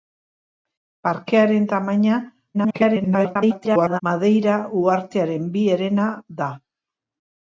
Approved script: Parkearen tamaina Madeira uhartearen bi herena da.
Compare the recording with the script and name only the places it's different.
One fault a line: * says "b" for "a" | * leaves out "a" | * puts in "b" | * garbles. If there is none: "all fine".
* garbles